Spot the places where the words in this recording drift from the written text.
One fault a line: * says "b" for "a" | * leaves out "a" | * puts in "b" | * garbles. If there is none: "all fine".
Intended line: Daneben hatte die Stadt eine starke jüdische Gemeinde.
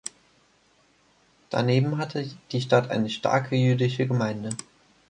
all fine